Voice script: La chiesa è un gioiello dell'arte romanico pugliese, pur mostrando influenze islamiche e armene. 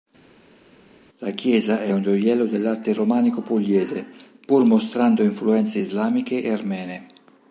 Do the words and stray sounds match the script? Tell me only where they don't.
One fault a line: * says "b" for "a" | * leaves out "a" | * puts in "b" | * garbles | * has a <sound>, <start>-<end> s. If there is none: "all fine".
all fine